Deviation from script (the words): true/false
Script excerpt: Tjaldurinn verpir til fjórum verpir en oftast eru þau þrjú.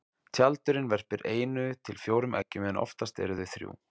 true